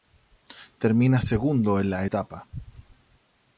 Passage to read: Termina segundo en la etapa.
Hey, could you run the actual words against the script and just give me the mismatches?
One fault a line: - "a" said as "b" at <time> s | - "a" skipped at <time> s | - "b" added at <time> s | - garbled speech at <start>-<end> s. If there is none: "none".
none